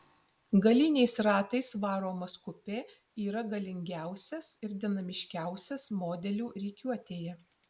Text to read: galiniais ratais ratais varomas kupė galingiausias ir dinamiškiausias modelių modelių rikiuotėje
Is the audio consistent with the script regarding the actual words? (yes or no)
no